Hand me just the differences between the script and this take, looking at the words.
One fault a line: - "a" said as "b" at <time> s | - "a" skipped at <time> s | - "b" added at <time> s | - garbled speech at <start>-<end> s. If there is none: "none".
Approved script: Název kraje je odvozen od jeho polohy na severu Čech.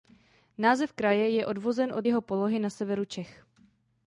none